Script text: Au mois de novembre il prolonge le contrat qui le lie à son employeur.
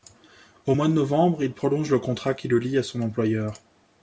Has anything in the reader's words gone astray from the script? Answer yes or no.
no